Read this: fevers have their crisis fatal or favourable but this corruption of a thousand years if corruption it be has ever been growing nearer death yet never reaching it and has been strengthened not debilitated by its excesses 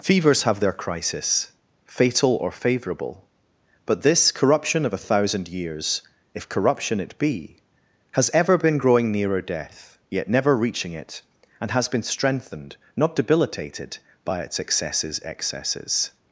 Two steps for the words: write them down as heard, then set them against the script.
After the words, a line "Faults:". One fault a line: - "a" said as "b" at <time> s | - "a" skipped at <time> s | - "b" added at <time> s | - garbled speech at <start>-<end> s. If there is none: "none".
fevers have their crisis fatal or favourable but this corruption of a thousand years if corruption it be has ever been growing nearer death yet never reaching it and has been strengthened not debilitated by its excesses excesses
Faults:
- "excesses" added at 15.2 s